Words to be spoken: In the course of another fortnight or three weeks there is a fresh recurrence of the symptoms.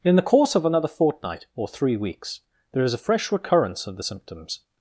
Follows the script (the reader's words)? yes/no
yes